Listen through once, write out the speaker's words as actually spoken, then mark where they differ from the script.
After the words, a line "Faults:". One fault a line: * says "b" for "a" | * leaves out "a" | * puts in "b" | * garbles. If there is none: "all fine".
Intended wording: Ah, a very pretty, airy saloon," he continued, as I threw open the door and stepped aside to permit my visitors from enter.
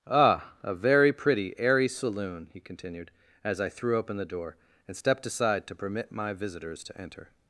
Ah, a very pretty, airy saloon," he continued, as I threw open the door and stepped aside to permit my visitors to enter.
Faults:
* says "to" for "from"